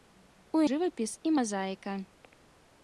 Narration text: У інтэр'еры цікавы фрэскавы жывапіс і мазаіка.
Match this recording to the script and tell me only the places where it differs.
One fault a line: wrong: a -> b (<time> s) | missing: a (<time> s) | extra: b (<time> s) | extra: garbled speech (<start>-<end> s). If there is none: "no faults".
missing: інтэр'еры цікавы фрэскавы (0.6 s)